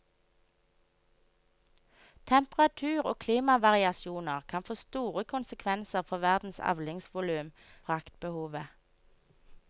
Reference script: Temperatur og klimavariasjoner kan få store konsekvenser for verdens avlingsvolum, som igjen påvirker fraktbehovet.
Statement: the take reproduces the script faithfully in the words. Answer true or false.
false